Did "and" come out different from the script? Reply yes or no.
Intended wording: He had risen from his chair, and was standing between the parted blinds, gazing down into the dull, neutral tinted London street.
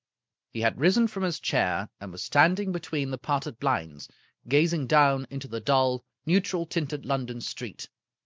no